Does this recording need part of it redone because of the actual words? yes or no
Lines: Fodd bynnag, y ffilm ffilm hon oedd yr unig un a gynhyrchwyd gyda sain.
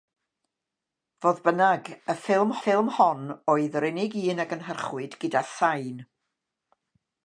no